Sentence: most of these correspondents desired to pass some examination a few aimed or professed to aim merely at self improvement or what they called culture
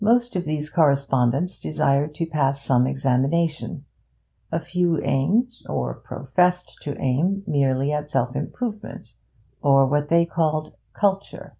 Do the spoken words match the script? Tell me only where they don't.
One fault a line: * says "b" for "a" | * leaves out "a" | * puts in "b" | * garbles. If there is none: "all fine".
all fine